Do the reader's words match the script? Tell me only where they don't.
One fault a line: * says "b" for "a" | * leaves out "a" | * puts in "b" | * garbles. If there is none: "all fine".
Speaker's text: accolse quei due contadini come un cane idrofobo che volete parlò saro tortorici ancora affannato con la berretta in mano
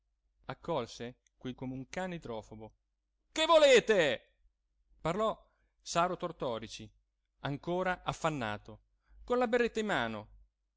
* leaves out "due contadini"